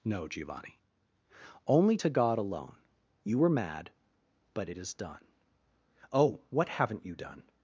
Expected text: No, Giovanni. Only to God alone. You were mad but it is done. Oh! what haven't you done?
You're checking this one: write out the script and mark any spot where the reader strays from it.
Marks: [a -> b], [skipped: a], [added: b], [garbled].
No, Giovanni. Only to God alone. You were mad but it is done. Oh! what haven't you done?